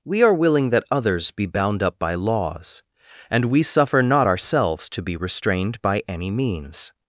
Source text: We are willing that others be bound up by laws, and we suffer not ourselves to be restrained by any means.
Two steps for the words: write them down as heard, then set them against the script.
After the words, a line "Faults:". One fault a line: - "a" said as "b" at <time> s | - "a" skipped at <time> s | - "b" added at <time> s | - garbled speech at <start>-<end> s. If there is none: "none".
We are willing that others be bound up by laws, and we suffer not ourselves to be restrained by any means.
Faults:
none